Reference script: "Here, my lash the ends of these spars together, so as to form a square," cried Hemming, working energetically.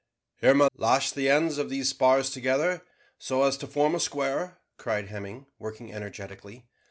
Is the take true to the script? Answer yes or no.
yes